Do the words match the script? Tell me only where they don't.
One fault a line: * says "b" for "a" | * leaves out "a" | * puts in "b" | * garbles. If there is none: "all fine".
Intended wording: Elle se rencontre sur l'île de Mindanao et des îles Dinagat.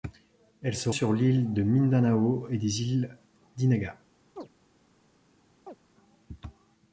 * leaves out "rencontre"